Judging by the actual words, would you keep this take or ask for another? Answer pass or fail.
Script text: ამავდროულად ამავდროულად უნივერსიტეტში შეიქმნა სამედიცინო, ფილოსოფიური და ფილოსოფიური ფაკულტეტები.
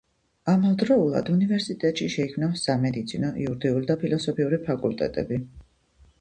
fail